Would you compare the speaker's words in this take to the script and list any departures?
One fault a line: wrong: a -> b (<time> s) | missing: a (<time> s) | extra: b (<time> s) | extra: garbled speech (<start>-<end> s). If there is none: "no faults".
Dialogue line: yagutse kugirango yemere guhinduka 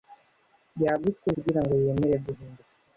no faults